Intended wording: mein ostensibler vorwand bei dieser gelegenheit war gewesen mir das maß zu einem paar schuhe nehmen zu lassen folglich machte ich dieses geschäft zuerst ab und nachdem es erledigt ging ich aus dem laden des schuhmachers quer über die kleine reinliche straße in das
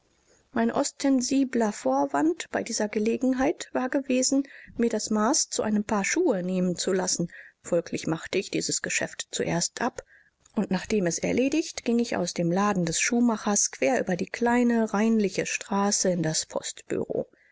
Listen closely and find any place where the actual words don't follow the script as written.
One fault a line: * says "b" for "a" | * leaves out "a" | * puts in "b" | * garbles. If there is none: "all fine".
all fine